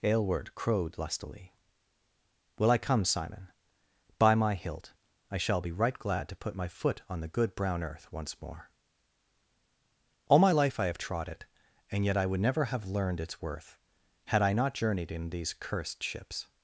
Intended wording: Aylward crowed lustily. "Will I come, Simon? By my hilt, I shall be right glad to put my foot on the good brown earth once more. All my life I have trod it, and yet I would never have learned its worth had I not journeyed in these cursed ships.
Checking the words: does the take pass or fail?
pass